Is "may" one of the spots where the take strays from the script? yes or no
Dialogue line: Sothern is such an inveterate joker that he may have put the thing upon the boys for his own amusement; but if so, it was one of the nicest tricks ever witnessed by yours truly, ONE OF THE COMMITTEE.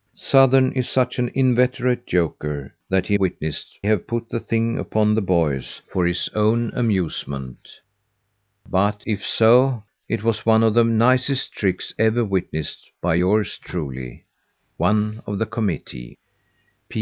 yes